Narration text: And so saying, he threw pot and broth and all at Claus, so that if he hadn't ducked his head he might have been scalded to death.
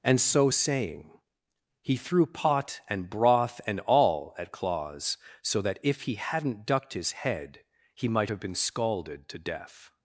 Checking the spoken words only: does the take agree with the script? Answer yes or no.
yes